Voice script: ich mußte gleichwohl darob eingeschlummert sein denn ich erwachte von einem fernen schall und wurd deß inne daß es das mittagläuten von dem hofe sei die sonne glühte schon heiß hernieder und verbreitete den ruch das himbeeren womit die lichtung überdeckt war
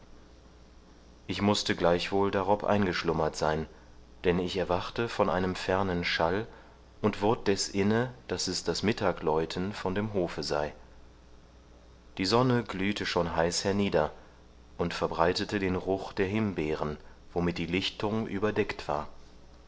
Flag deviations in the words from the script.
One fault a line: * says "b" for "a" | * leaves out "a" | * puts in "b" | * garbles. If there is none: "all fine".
* says "der" for "das"